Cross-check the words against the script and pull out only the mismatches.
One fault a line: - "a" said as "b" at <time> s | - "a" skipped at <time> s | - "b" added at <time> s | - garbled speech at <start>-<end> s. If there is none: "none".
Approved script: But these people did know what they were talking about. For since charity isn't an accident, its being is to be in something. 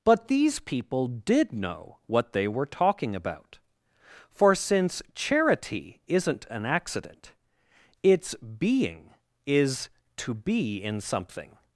none